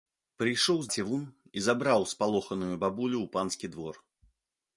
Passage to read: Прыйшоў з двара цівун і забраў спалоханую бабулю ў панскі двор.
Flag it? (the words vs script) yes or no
yes